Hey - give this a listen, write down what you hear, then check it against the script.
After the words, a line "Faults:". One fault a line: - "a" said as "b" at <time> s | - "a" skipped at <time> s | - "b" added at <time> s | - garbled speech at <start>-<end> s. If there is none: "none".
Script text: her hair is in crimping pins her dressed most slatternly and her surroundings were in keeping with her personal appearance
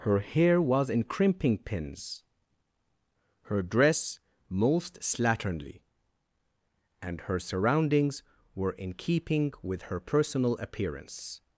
her hair was in crimping pins her dress most slatternly and her surroundings were in keeping with her personal appearance
Faults:
- "is" said as "was" at 0.6 s
- "dressed" said as "dress" at 3.6 s